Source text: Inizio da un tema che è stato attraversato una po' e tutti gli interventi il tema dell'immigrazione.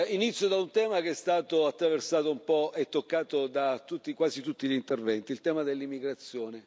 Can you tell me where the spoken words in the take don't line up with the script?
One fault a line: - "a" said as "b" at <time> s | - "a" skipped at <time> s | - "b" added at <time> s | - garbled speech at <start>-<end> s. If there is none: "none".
- "una" said as "un" at 2.3 s
- "toccato da quasi" added at 2.9 s